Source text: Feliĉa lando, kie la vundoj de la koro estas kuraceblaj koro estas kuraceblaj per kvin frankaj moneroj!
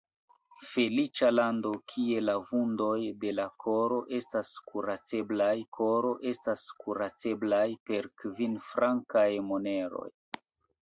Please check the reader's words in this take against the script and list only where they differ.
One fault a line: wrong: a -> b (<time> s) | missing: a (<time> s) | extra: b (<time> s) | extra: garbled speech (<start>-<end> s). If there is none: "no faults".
no faults